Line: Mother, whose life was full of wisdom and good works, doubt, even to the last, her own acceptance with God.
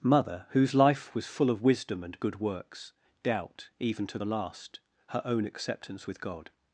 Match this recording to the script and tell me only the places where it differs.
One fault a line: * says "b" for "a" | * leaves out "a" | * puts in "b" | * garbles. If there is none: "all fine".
all fine